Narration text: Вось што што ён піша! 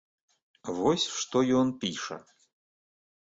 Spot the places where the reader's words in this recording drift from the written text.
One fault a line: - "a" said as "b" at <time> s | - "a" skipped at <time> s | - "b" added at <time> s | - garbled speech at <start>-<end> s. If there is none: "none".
- "што" skipped at 1.4 s